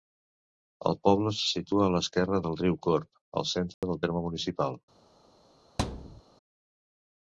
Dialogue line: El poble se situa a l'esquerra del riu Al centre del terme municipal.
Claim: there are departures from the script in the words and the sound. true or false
true